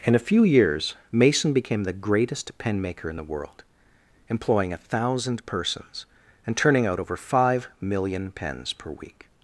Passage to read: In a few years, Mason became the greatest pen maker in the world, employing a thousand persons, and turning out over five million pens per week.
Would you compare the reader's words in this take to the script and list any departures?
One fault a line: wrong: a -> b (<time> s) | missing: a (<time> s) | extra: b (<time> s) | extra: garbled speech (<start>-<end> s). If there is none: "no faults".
no faults